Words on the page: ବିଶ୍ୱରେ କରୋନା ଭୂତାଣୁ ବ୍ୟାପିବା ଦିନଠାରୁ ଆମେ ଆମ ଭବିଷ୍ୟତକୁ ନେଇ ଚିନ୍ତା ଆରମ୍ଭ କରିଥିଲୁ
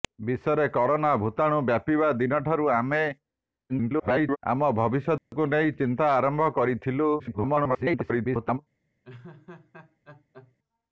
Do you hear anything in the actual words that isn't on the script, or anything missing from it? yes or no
yes